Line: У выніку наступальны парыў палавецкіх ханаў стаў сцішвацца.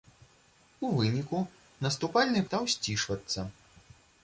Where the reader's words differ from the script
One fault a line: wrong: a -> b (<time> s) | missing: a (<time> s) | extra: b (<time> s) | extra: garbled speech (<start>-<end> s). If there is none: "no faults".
missing: парыў палавецкіх ханаў (2.4 s)